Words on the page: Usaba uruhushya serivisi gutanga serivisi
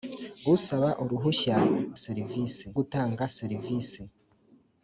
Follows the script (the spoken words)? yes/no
yes